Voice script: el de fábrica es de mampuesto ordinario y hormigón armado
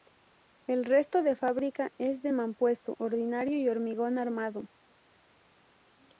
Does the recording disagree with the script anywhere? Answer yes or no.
yes